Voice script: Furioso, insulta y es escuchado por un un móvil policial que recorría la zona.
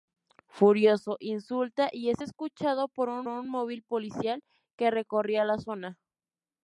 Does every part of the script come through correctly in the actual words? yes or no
yes